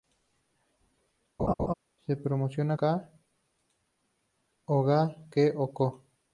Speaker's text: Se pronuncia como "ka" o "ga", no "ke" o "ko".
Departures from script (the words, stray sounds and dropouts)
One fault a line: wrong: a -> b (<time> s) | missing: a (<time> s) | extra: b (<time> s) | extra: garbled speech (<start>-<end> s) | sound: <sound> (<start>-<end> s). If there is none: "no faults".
sound: laugh (1.4-1.7 s)
missing: como (2.6 s)
missing: no (5.2 s)